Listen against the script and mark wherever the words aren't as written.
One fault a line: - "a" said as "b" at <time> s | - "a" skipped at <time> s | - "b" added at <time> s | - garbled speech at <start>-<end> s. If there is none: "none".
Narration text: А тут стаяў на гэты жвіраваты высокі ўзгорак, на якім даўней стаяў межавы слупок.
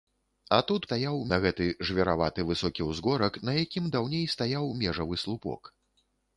none